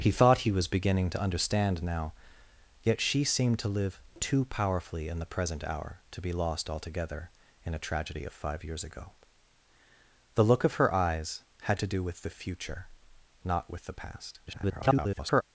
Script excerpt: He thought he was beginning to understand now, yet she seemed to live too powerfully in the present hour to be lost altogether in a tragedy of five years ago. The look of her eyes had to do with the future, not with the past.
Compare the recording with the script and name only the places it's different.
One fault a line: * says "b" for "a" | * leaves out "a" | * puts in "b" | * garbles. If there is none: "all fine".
* garbles